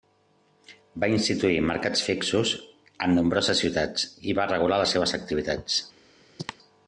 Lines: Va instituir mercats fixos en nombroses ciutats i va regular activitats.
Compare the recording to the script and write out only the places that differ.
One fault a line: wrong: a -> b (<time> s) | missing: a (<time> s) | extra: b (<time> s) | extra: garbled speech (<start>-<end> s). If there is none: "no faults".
extra: les seves (4.8 s)